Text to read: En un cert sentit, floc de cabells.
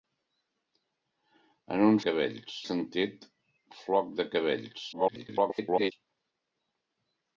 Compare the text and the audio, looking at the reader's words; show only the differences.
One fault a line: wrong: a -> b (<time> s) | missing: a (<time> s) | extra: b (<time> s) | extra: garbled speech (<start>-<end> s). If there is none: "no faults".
wrong: cert -> cabells (2.1 s)
extra: garbled speech (4.9-5.9 s)